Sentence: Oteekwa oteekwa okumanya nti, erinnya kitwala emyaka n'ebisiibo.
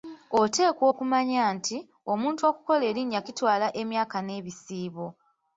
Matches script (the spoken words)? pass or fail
fail